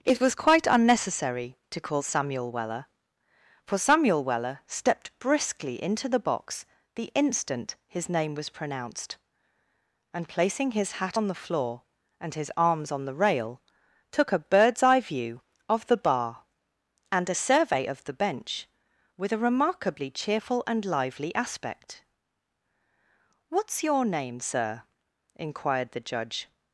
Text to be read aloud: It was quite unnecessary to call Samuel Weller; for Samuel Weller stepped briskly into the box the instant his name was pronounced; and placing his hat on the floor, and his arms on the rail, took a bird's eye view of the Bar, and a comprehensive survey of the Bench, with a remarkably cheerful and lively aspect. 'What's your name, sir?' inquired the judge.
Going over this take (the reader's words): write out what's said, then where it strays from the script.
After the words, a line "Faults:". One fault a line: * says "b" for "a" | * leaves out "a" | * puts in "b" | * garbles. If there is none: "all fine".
It was quite unnecessary to call Samuel Weller; for Samuel Weller stepped briskly into the box the instant his name was pronounced; and placing his hat on the floor, and his arms on the rail, took a bird's eye view of the Bar, and a survey of the Bench, with a remarkably cheerful and lively aspect. 'What's your name, sir?' inquired the judge.
Faults:
* leaves out "comprehensive"